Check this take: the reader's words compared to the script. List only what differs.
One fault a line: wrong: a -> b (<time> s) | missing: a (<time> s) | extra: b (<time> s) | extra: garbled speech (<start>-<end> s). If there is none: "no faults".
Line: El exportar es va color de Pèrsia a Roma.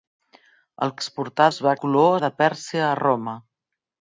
no faults